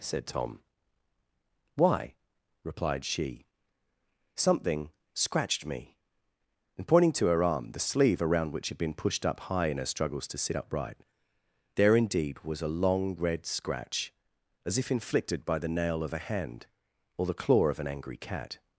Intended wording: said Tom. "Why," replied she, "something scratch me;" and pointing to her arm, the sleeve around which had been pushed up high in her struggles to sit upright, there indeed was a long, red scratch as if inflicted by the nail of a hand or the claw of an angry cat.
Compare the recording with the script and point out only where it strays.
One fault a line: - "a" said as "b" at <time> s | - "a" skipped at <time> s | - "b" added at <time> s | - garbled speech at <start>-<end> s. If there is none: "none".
- "scratch" said as "scratched" at 5.1 s